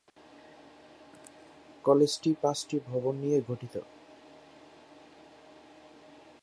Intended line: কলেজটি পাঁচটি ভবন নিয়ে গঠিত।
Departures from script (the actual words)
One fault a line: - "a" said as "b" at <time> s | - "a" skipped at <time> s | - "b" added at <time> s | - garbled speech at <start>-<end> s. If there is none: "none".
none